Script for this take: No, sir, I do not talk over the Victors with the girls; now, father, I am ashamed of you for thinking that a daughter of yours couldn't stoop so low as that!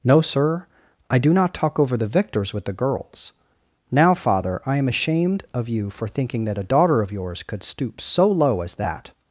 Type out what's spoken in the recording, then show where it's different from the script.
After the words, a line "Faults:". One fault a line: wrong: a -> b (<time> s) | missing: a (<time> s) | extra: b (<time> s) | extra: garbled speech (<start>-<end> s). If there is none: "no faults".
No, sir, I do not talk over the Victors with the girls; now, father, I am ashamed of you for thinking that a daughter of yours could stoop so low as that!
Faults:
wrong: couldn't -> could (7.4 s)